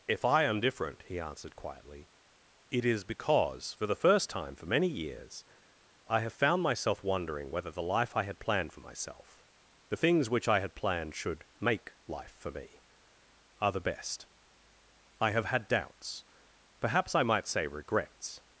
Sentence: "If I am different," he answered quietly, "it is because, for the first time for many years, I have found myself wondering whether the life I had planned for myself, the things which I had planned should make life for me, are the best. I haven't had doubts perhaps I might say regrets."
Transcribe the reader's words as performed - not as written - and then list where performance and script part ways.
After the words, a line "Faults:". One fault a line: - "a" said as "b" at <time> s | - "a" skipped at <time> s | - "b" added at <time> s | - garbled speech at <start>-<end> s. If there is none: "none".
"If I am different," he answered quietly, "it is because, for the first time for many years, I have found myself wondering whether the life I had planned for myself, the things which I had planned should make life for me, are the best. I have had doubts perhaps I might say regrets."
Faults:
- "haven't" said as "have" at 15.3 s